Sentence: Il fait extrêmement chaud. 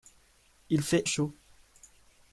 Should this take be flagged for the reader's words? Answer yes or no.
yes